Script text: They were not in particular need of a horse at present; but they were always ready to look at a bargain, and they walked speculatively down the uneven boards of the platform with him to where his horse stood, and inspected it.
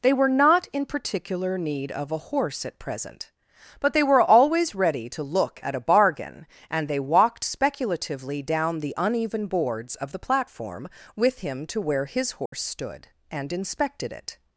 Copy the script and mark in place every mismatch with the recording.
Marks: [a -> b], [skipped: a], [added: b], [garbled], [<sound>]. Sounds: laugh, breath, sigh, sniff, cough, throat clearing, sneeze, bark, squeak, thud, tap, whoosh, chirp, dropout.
They were not in particular need of a horse at present; but they were always ready to look at a bargain, and they walked speculatively down the uneven boards of the platform with him to where his horse [dropout] stood, and inspected it.